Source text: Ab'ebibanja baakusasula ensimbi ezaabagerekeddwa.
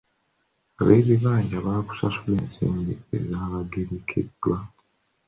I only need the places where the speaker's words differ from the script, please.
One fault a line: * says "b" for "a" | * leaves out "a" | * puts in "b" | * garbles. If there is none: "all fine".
all fine